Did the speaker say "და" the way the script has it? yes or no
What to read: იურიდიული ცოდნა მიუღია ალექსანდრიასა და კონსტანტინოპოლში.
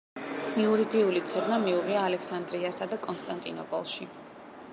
yes